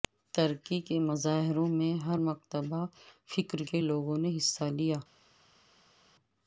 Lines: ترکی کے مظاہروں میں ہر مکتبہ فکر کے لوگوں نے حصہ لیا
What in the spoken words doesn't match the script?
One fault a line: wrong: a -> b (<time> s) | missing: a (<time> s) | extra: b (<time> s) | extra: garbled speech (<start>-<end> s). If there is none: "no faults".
no faults